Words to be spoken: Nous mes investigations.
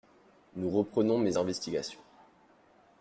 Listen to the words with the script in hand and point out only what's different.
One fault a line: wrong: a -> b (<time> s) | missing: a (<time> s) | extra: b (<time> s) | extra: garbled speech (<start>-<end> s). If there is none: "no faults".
extra: reprenons (0.7 s)